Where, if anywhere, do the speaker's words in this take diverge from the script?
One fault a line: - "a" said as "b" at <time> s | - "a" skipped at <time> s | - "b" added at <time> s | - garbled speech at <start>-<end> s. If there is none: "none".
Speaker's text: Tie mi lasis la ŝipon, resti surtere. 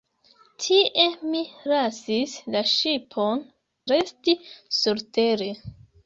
none